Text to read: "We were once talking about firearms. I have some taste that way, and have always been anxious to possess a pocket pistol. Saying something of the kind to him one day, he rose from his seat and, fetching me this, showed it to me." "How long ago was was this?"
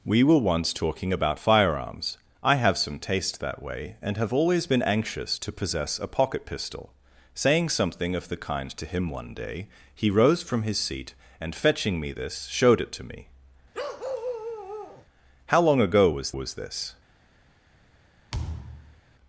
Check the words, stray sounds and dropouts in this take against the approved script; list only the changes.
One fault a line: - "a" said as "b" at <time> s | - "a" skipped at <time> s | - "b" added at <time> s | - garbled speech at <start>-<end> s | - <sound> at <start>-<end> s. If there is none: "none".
- bark at 13.7-15.1 s
- thud at 18.3-19.0 s